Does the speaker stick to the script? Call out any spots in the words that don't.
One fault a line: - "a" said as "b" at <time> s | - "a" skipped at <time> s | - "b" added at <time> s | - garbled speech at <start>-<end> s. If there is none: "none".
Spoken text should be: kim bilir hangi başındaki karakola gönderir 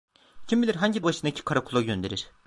none